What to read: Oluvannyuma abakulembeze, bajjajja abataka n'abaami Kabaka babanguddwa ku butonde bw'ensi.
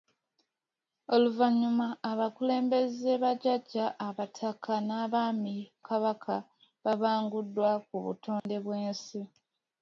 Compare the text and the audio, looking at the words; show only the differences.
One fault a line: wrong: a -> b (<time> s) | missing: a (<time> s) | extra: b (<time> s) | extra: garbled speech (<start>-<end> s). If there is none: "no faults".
no faults